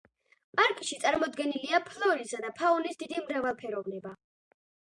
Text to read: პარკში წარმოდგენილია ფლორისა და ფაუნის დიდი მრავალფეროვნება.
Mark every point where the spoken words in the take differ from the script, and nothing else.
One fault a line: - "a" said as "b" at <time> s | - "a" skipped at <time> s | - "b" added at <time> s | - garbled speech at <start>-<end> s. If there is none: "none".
none